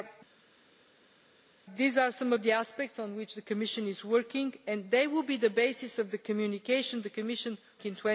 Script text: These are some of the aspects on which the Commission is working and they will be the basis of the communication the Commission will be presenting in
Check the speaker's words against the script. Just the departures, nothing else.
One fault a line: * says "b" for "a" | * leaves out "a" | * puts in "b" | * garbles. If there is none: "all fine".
* leaves out "will be presenting"